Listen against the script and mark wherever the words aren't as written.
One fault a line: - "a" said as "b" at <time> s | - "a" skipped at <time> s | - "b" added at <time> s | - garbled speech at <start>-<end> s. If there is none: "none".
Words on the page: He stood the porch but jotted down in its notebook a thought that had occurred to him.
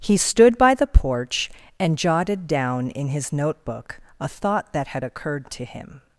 - "by" added at 0.6 s
- "but" said as "and" at 1.8 s
- "its" said as "his" at 3.1 s